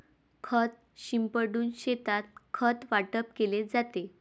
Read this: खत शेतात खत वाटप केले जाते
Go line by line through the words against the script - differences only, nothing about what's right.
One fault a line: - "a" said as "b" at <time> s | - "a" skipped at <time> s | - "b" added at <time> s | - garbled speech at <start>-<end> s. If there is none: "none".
- "शिंपडून" added at 1.0 s